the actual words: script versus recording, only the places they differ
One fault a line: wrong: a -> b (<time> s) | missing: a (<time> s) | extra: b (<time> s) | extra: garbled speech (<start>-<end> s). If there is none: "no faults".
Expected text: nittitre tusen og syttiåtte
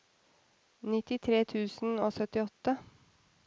no faults